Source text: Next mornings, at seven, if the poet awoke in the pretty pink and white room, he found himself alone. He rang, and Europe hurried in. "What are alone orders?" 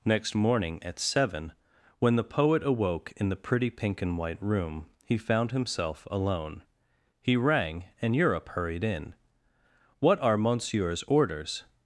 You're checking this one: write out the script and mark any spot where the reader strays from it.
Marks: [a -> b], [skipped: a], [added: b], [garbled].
Next [mornings, -> morning] at seven, [if -> when] the poet awoke in the pretty pink and white room, he found himself alone. He rang, and Europe hurried in. "What are [alone -> monsieur's] orders?"